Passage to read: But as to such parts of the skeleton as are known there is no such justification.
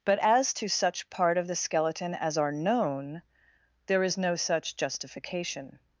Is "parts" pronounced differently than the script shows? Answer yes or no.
yes